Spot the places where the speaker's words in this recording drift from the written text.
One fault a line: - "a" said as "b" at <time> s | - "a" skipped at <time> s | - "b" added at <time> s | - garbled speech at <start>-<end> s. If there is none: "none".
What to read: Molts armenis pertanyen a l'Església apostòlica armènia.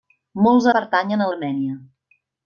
- "armenis" skipped at 0.7 s
- "l'Església apostòlica" skipped at 1.3 s